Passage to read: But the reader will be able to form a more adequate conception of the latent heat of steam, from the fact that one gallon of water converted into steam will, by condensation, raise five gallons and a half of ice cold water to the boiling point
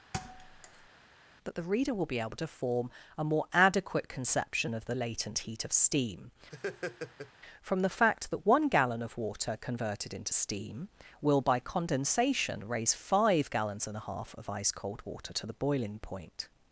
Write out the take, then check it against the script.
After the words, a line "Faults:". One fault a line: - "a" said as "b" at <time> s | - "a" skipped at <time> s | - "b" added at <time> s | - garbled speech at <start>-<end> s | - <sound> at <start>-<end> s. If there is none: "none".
That the reader will be able to form a more adequate conception of the latent heat of steam, from the fact that one gallon of water converted into steam will, by condensation, raise five gallons and a half of ice cold water to the boiling point
Faults:
- thud at 0.1-0.9 s
- "But" said as "That" at 1.4 s
- laugh at 6.5-7.3 s